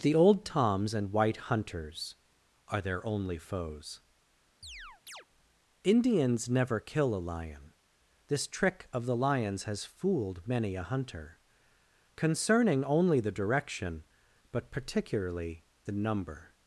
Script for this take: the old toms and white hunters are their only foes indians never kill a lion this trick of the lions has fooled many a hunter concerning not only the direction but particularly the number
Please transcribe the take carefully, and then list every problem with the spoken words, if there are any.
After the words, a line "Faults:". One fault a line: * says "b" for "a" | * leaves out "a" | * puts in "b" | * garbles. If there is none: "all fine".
the old toms and white hunters are their only foes indians never kill a lion this trick of the lions has fooled many a hunter concerning only the direction but particularly the number
Faults:
* leaves out "not"